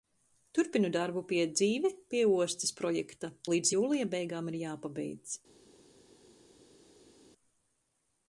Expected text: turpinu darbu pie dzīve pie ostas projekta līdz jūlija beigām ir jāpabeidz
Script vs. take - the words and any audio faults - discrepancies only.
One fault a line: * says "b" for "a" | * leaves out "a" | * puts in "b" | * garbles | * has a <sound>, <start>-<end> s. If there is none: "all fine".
all fine